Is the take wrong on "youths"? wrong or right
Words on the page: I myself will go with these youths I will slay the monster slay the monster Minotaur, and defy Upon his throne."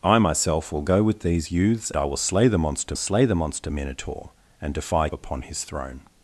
right